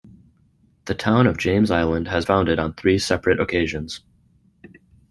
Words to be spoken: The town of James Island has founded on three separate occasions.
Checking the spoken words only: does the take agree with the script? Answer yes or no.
yes